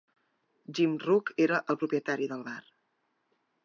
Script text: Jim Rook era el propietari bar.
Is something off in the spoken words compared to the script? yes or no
yes